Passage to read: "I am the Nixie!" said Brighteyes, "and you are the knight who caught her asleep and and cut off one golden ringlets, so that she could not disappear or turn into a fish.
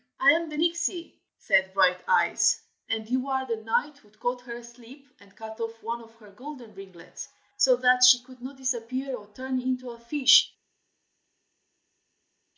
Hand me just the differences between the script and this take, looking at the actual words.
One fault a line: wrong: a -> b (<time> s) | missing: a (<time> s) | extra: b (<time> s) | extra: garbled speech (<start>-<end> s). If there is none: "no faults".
missing: and (5.4 s)
extra: of her (6.0 s)